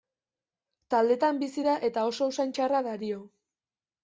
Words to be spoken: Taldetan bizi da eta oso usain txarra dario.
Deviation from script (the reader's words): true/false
false